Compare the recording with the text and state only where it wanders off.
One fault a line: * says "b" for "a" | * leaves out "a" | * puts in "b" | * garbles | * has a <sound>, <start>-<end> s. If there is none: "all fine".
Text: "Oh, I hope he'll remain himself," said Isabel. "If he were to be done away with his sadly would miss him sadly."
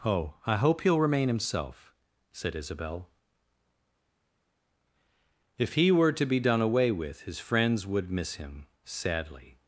* says "friends" for "sadly"